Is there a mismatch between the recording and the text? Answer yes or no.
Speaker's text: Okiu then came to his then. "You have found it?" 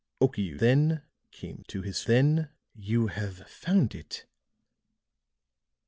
no